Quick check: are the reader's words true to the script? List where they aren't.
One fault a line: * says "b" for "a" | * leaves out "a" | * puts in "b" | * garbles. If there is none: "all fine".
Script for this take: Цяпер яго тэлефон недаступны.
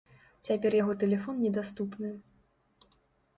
all fine